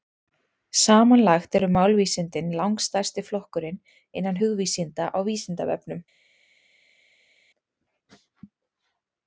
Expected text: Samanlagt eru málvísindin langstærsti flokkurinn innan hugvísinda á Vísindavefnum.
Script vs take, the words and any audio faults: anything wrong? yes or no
no